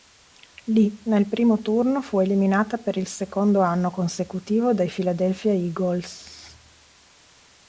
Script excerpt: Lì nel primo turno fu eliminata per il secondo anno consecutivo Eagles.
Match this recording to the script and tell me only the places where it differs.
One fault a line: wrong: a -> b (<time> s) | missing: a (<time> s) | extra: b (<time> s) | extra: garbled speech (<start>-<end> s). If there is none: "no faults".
extra: dai Philadelphia (4.7 s)